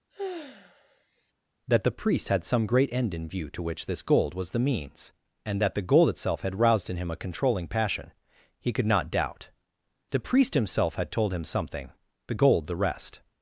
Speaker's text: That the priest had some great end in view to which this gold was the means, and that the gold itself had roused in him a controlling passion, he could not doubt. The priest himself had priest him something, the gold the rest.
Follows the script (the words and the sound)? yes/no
no